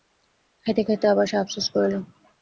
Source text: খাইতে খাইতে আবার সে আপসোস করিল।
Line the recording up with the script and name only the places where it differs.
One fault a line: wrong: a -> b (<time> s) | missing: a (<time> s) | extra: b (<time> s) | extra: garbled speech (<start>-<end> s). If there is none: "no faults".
no faults